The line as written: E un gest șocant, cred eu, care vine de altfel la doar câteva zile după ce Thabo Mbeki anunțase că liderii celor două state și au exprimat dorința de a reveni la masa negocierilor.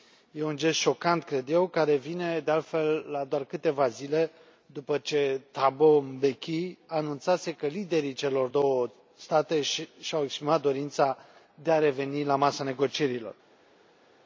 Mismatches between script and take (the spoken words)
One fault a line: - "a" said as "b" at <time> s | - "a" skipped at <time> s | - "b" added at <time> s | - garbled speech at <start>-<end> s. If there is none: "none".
none